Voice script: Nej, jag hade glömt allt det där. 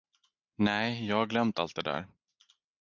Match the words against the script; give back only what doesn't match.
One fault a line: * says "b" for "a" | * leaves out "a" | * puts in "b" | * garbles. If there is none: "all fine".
* says "har" for "hade"